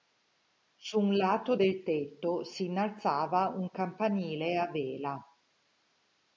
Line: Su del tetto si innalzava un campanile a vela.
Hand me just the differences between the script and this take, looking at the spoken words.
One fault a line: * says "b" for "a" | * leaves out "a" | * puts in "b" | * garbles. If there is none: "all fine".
* puts in "un lato"